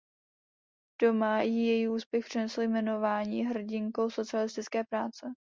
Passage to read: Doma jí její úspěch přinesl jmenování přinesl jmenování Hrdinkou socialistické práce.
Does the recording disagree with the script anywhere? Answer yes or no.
yes